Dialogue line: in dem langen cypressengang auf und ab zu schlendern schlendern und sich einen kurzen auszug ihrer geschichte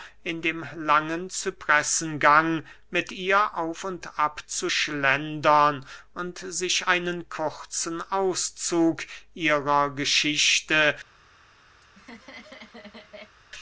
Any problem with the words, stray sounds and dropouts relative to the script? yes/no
yes